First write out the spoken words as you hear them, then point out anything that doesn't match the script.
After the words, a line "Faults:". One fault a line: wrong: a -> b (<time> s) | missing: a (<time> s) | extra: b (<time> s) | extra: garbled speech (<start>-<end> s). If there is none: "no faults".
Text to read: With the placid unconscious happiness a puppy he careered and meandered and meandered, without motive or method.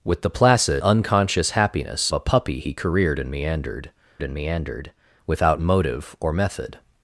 With the placid unconscious happiness a puppy he careered and meandered and meandered, without motive or method.
Faults:
no faults